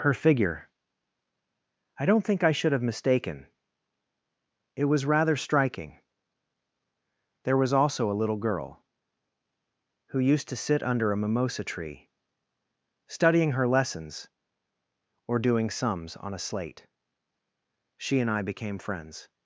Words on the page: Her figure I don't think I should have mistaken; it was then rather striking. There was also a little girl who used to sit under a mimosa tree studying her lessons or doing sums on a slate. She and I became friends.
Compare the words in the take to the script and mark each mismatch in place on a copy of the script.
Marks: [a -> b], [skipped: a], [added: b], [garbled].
Her figure I don't think I should have mistaken; it was [skipped: then] rather striking. There was also a little girl who used to sit under a mimosa tree studying her lessons or doing sums on a slate. She and I became friends.